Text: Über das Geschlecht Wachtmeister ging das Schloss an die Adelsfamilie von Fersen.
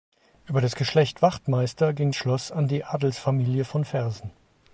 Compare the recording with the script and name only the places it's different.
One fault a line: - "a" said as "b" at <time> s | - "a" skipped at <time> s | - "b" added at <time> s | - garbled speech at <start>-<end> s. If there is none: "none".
- "das" skipped at 2.1 s